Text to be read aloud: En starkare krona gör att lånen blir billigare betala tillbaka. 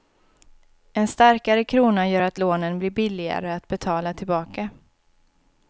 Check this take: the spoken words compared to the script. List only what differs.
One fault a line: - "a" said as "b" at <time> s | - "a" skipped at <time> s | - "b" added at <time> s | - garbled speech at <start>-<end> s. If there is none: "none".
- "att" added at 3.5 s